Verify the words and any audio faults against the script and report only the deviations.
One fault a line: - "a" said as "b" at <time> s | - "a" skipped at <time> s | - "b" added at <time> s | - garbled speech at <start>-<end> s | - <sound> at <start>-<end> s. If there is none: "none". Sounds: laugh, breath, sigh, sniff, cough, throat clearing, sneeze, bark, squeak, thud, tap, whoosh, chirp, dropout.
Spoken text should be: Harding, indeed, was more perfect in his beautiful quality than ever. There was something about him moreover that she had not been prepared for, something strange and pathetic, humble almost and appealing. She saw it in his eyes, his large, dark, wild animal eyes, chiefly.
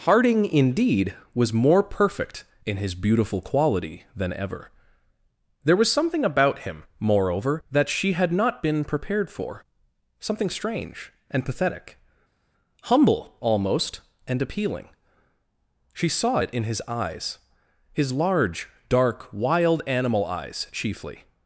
none